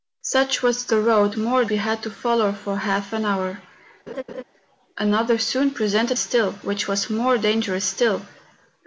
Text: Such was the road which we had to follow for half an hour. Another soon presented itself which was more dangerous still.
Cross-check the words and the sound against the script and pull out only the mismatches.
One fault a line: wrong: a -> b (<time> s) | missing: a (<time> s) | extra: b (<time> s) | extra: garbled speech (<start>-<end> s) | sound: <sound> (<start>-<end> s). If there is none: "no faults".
wrong: which -> more (1.4 s)
sound: laugh (4.1-4.4 s)
wrong: itself -> still (6.2 s)